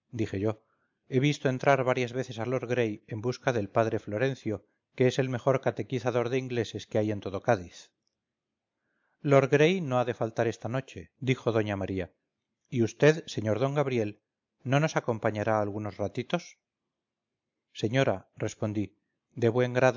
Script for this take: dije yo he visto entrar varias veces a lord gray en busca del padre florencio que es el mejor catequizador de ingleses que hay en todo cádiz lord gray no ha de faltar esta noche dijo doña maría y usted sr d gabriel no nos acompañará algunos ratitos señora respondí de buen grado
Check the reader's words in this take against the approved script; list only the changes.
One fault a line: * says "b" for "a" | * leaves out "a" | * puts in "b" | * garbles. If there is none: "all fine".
all fine